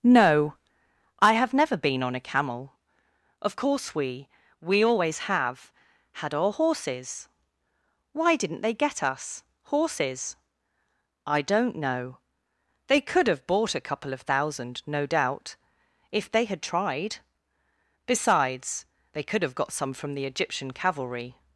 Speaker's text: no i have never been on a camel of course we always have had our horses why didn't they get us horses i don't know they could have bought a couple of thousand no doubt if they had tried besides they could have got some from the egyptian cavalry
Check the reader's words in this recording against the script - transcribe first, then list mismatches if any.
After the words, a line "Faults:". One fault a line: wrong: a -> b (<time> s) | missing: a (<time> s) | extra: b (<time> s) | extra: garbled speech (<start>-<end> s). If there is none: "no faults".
no i have never been on a camel of course we we always have had our horses why didn't they get us horses i don't know they could have bought a couple of thousand no doubt if they had tried besides they could have got some from the egyptian cavalry
Faults:
extra: we (4.6 s)